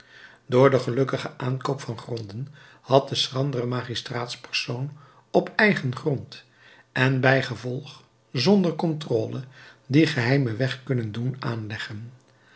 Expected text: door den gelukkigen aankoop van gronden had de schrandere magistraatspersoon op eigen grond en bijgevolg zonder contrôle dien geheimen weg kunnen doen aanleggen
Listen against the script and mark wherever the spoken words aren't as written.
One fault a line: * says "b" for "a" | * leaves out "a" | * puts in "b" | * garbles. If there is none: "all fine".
all fine